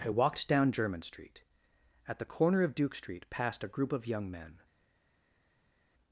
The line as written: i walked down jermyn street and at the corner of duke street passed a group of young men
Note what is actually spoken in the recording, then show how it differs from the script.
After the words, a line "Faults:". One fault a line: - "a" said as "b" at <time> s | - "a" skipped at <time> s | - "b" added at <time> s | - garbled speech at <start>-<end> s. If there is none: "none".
i walked down jermyn street at the corner of duke street passed a group of young men
Faults:
- "and" skipped at 1.4 s